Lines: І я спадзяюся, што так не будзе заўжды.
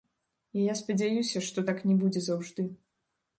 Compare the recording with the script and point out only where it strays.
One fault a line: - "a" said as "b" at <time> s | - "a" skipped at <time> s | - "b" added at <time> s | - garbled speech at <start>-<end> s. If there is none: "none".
none